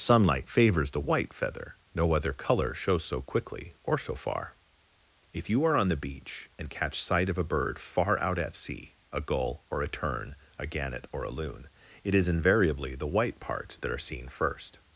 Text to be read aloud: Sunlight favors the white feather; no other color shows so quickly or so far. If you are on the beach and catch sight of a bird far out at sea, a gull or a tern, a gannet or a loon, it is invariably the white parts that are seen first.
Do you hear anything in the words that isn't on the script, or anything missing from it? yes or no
no